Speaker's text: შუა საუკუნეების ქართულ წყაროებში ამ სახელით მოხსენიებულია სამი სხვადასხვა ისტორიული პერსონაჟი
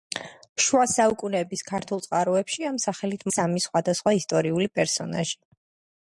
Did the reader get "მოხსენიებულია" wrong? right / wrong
wrong